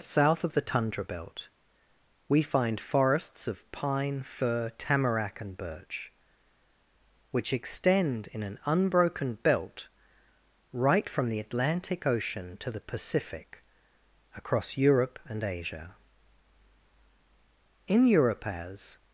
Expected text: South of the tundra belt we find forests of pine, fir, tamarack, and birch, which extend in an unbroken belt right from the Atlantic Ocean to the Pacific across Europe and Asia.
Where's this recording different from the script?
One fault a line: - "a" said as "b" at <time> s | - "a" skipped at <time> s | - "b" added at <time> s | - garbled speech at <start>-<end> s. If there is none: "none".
- "In Europe as" added at 17.9 s